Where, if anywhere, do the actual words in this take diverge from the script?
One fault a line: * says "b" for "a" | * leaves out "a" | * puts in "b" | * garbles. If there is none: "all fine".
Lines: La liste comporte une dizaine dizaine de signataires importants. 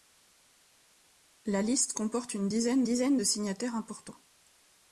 all fine